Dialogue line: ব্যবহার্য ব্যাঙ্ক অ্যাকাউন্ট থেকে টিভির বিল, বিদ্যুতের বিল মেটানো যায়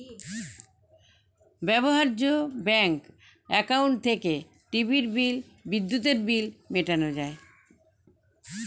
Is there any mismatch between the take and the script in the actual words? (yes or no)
no